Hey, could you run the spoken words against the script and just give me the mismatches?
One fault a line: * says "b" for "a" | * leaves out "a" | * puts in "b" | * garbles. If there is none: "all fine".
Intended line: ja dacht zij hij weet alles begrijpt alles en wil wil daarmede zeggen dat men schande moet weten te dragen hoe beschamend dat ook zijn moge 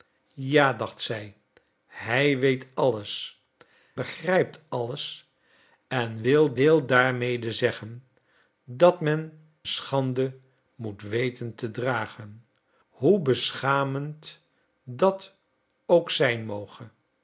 all fine